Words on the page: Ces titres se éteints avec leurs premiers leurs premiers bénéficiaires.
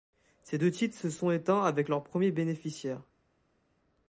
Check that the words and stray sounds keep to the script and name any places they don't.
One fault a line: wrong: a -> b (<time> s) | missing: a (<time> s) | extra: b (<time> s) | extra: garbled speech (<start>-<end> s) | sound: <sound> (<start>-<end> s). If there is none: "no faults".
extra: deux (0.5 s)
extra: sont (1.1 s)
missing: leurs premiers (2.3 s)